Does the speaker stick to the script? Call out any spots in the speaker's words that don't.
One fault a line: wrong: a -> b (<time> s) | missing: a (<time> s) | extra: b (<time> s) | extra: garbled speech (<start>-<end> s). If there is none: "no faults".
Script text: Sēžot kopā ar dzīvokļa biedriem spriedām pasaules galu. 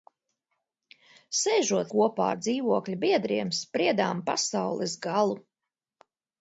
no faults